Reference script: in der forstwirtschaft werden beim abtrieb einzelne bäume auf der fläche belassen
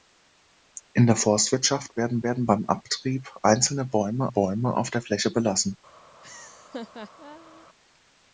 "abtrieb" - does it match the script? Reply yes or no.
yes